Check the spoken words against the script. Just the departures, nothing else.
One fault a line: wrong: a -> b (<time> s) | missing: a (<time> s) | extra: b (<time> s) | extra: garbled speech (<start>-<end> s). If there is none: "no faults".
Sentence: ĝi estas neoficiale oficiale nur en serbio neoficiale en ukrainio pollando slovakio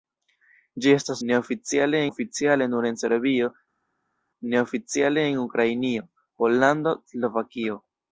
no faults